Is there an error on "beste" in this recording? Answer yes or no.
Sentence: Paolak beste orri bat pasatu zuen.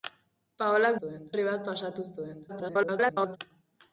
yes